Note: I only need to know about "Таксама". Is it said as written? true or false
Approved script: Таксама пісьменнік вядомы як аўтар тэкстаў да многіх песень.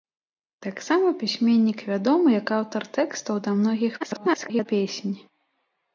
true